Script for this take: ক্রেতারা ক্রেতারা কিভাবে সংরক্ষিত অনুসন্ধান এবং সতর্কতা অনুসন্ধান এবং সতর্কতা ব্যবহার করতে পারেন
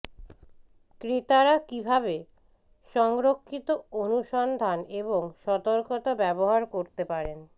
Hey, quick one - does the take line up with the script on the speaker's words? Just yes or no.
no